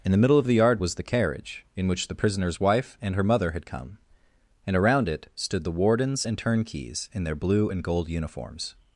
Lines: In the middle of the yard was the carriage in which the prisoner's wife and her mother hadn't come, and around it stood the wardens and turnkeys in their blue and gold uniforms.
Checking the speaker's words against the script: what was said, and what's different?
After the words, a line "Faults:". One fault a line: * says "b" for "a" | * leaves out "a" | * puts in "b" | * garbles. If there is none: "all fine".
In the middle of the yard was the carriage in which the prisoner's wife and her mother had come, and around it stood the wardens and turnkeys in their blue and gold uniforms.
Faults:
* says "had" for "hadn't"